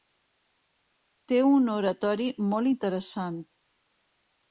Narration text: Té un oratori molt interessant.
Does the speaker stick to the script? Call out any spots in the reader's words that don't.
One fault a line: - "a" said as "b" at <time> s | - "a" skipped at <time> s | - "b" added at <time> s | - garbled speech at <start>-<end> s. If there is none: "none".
none